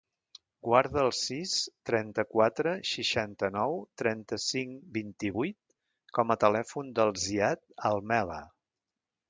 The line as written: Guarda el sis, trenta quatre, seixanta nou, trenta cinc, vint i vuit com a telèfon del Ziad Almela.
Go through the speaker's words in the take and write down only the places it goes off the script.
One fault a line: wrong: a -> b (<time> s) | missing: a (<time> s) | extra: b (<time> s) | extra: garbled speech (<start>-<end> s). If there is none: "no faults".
no faults